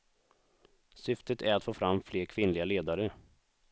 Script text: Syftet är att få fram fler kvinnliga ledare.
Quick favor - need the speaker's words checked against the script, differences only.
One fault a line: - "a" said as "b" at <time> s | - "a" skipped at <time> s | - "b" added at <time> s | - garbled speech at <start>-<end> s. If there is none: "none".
none